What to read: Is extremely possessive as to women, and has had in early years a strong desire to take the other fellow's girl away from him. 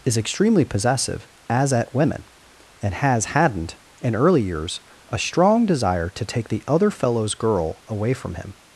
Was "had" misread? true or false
true